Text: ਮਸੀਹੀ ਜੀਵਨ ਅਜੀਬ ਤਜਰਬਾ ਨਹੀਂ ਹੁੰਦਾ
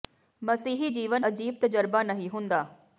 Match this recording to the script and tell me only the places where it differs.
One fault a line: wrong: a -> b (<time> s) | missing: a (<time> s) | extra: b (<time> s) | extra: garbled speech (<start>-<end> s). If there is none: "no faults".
no faults